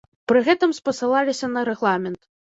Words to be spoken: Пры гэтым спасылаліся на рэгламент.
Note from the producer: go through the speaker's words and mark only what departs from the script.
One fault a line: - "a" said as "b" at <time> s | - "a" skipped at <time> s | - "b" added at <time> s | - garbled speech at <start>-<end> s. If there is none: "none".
none